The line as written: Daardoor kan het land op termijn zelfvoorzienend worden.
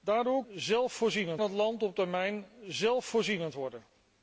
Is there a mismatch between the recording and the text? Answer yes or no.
yes